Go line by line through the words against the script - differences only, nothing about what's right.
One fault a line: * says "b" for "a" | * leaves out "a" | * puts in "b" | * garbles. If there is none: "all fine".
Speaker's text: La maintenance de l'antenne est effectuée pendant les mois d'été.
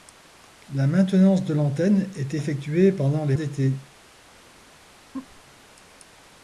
* leaves out "mois"